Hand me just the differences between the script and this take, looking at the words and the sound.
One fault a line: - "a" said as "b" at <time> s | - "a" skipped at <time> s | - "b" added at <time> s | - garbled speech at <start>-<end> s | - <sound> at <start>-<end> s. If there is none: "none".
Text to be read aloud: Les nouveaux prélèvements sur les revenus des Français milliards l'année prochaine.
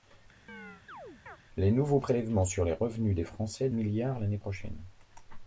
- chirp at 0.5-1.4 s